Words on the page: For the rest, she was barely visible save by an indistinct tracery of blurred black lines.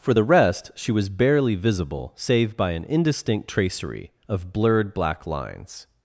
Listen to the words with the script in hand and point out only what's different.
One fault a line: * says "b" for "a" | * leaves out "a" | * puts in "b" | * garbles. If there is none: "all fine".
all fine